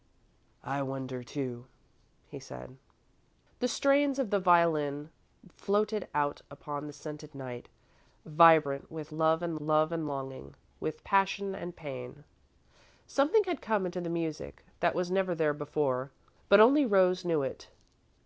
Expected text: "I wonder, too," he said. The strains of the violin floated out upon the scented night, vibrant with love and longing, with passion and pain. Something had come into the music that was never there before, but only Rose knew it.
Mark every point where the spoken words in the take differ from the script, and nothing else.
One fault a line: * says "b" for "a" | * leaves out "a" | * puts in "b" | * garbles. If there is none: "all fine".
* puts in "love and"